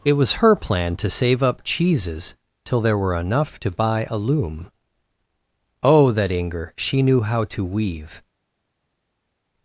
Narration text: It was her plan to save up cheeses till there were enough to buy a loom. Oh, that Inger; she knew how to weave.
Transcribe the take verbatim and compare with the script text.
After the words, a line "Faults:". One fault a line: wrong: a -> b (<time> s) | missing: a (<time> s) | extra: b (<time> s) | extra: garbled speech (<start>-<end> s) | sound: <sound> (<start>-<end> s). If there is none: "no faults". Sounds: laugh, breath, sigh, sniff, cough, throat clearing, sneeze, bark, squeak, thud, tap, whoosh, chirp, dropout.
It was her plan to save up cheeses till there were enough to buy a loom. Oh, that Inger; she knew how to weave.
Faults:
no faults